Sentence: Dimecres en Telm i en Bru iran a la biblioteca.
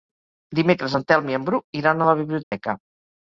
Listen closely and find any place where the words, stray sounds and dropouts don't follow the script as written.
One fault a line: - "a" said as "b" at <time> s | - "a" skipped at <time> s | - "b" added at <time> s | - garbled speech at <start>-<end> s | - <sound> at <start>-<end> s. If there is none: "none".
- dropout at 2.4-2.5 s